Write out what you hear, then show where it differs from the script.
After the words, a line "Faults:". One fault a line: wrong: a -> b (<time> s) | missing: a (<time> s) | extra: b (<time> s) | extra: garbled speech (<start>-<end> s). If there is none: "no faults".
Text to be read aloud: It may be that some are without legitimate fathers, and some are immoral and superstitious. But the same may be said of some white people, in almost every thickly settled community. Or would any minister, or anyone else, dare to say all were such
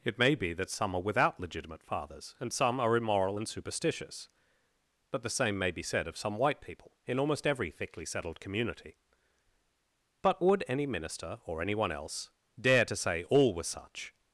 It may be that some are without legitimate fathers, and some are immoral and superstitious. But the same may be said of some white people, in almost every thickly settled community. But would any minister, or anyone else, dare to say all were such
Faults:
wrong: Or -> But (10.2 s)